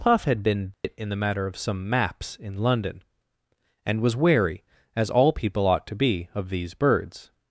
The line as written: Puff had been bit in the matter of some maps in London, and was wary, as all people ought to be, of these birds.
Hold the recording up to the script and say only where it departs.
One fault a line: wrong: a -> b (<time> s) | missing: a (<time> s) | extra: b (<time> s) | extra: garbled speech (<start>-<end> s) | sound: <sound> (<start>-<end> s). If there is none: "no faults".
sound: dropout (0.7-0.8 s)